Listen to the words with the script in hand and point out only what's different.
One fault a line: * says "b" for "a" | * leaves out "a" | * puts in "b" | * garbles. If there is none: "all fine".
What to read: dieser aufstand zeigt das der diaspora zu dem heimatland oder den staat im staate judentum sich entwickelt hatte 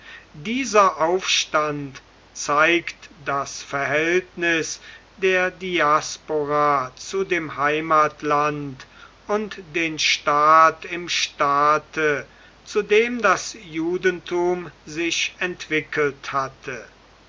* puts in "verhältnis"
* says "und" for "oder"
* puts in "zu dem das"